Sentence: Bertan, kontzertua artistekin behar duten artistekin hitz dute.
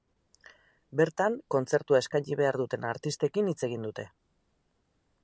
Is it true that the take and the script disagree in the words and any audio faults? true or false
true